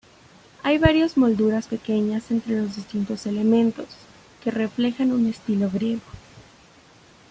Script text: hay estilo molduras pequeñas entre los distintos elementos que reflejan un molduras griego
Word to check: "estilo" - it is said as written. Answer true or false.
false